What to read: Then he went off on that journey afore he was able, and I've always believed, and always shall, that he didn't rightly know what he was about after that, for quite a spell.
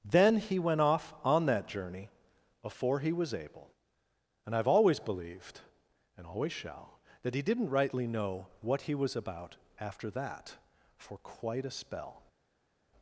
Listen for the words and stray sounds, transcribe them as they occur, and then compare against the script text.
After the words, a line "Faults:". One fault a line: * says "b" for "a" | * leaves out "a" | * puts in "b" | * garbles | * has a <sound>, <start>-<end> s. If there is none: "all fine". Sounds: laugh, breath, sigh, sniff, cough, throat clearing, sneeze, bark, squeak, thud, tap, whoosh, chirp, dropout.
Then he went off on that journey before he was able, and I've always believed, and always shall, that he didn't rightly know what he was about after that, for quite a spell.
Faults:
* says "before" for "afore"